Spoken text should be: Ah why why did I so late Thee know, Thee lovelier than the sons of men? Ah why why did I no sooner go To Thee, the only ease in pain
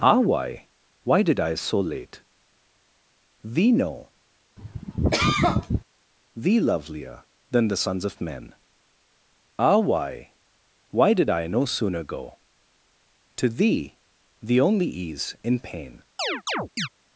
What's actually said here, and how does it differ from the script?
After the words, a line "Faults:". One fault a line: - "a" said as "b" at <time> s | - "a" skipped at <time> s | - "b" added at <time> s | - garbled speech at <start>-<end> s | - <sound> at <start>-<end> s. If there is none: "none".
Ah why why did I so late Thee know, Thee lovelier than the sons of men? Ah why why did I no sooner go To Thee, the only ease in pain
Faults:
- cough at 4.6-5.8 s
- chirp at 16.2-16.9 s